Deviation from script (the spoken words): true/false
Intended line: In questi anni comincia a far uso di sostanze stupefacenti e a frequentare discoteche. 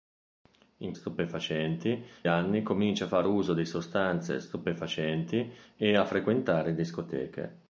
true